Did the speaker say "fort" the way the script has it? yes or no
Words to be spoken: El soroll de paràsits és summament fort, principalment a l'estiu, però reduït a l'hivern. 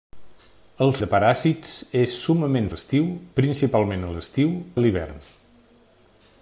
no